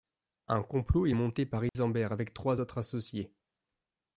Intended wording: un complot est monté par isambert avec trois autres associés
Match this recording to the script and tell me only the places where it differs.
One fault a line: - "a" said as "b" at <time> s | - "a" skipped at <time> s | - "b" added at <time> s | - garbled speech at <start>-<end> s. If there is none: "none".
none